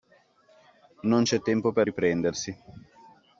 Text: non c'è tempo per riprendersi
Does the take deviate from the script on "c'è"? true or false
false